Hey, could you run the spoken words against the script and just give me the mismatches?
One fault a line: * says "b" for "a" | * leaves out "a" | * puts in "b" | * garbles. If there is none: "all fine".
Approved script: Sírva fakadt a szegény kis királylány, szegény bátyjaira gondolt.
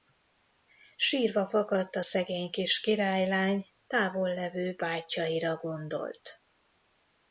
* says "távollevő" for "szegény"